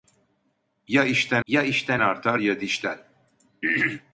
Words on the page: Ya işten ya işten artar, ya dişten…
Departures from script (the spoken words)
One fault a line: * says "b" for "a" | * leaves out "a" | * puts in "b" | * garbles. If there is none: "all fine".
all fine